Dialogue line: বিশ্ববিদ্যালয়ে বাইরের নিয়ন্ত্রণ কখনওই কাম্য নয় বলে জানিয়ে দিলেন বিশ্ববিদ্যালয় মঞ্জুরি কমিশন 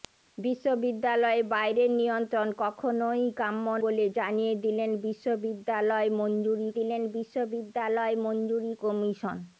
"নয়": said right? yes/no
no